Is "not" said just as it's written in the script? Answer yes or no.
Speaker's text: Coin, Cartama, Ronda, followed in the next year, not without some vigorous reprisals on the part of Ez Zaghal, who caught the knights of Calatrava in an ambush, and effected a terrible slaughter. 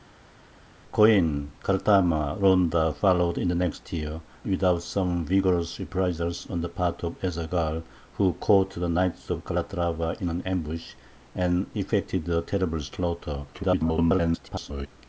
no